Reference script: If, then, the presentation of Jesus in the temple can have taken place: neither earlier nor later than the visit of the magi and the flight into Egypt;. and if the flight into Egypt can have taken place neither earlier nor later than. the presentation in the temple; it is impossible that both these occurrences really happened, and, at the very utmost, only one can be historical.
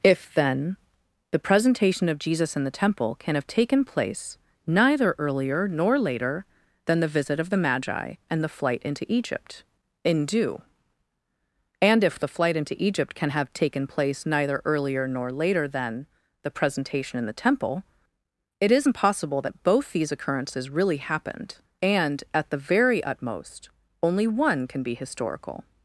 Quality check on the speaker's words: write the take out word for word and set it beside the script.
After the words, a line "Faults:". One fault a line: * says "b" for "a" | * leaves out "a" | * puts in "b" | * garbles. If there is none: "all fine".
If, then, the presentation of Jesus in the temple can have taken place: neither earlier nor later than the visit of the magi and the flight into Egypt;. in due and if the flight into Egypt can have taken place neither earlier nor later than. the presentation in the temple; it is impossible that both these occurrences really happened, and, at the very utmost, only one can be historical.
Faults:
* puts in "in due"